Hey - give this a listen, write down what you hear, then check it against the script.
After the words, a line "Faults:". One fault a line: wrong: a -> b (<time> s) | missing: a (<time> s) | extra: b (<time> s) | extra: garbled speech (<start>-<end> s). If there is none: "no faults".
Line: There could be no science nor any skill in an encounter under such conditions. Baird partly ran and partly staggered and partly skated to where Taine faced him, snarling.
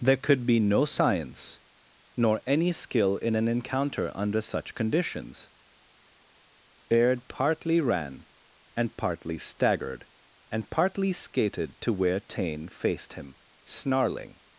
There could be no science nor any skill in an encounter under such conditions. Baird partly ran and partly staggered and partly skated to where Taine faced him, snarling.
Faults:
no faults